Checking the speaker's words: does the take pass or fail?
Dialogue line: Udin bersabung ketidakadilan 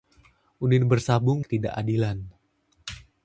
pass